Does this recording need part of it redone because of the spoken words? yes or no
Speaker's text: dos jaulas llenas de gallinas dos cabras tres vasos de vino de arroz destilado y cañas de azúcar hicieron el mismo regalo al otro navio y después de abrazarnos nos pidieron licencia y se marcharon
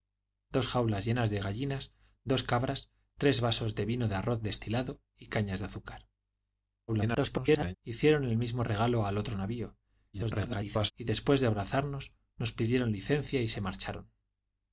yes